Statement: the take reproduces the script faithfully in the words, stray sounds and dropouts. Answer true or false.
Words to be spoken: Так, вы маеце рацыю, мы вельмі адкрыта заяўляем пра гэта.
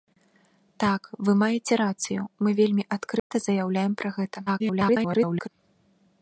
false